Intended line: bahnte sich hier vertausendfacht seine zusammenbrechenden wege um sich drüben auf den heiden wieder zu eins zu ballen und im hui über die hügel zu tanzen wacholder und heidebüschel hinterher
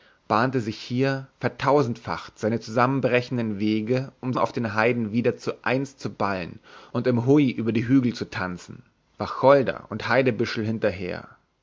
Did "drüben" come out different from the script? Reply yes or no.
yes